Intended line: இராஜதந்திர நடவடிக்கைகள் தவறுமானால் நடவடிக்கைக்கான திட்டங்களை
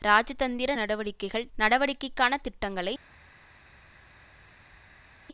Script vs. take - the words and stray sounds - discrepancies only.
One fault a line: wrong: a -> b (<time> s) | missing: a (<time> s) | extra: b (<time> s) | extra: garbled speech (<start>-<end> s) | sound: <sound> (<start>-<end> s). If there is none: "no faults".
missing: தவறுமானால் (1.5 s)